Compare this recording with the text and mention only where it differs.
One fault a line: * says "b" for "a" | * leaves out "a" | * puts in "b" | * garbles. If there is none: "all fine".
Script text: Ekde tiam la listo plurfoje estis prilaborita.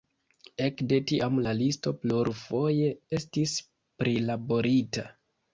all fine